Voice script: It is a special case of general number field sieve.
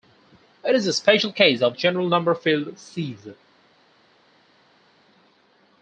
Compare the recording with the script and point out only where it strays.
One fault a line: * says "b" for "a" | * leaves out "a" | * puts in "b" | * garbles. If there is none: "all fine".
all fine